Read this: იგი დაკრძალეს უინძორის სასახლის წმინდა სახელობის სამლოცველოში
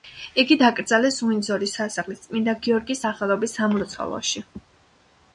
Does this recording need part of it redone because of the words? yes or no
yes